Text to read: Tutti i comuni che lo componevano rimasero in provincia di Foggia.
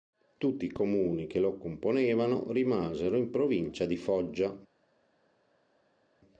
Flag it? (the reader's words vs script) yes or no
no